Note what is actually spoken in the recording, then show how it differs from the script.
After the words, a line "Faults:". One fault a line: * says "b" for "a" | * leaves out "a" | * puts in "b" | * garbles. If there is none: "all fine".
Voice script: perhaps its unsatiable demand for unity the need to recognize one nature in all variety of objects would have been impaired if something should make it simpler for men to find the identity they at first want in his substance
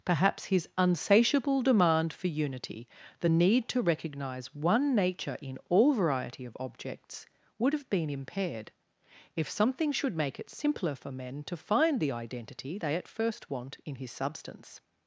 perhaps his unsatiable demand for unity the need to recognize one nature in all variety of objects would have been impaired if something should make it simpler for men to find the identity they at first want in his substance
Faults:
* says "his" for "its"